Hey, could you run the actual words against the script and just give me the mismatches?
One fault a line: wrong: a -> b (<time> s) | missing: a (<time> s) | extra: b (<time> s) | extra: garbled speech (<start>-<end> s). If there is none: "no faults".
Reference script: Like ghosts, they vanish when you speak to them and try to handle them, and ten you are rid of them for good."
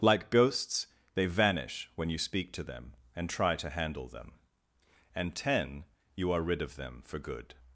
no faults